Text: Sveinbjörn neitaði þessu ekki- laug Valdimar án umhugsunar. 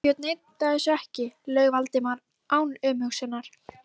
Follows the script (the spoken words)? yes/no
yes